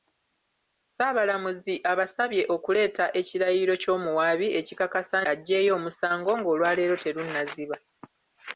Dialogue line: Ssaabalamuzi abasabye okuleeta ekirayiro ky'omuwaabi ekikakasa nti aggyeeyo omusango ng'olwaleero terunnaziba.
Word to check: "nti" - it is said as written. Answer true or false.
false